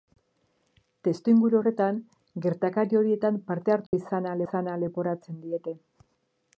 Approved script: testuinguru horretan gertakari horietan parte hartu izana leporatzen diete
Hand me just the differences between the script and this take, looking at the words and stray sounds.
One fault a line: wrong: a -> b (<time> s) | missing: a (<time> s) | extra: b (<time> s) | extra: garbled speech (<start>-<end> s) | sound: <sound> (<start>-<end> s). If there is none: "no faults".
sound: dropout (3.9-3.9 s)
extra: izana (4.4 s)